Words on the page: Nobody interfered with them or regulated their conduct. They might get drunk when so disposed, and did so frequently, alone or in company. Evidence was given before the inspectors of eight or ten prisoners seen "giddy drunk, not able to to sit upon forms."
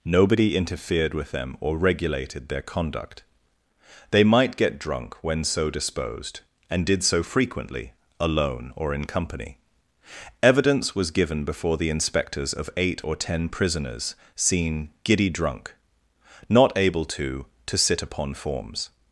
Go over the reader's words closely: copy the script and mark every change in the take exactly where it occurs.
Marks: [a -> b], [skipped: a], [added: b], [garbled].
Nobody interfered with them or regulated their conduct. They might get drunk when so disposed, and did so frequently, alone or in company. Evidence was given before the inspectors of eight or ten prisoners seen "giddy drunk, not able to to sit upon forms."